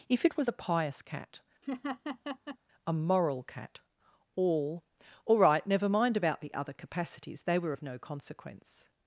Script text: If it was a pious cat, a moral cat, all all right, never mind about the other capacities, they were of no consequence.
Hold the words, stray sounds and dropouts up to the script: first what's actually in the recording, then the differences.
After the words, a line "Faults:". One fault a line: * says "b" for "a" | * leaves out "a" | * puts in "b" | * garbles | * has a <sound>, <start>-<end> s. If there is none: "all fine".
If it was a pious cat, a moral cat, all all right, never mind about the other capacities, they were of no consequence.
Faults:
* has a laugh, 1.6-2.6 s